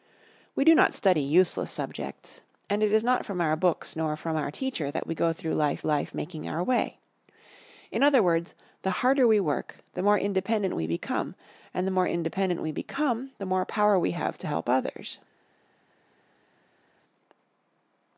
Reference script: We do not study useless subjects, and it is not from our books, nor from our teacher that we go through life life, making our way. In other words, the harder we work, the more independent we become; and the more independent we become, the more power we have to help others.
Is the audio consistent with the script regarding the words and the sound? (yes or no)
yes